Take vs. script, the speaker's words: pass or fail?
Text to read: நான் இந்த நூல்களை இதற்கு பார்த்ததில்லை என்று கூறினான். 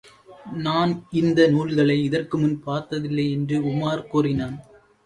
fail